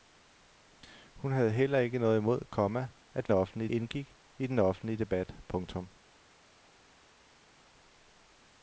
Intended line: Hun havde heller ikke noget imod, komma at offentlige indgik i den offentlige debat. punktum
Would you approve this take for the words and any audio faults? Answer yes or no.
yes